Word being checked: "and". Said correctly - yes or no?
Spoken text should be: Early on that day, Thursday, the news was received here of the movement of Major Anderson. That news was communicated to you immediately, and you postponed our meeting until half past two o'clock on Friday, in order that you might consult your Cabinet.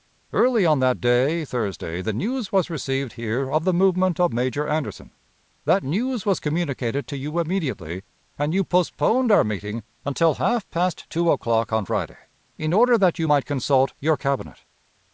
yes